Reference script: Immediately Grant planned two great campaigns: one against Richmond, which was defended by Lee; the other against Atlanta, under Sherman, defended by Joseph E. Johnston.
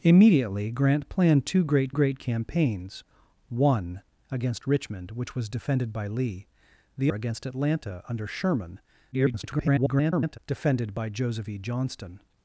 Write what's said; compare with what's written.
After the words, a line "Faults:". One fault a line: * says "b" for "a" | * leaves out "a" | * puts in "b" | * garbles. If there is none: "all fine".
Immediately Grant planned two great great campaigns: one against Richmond, which was defended by Lee; the against Atlanta, under Sherman, [garbled] defended by Joseph E. Johnston.
Faults:
* puts in "great"
* leaves out "other"
* garbles